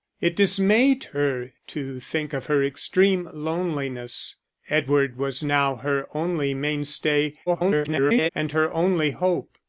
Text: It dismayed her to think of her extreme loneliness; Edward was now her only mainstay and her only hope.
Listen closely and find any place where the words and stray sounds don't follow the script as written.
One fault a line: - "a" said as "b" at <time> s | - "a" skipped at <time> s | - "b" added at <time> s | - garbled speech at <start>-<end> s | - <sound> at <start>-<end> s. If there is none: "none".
- garbled speech at 7.5-8.3 s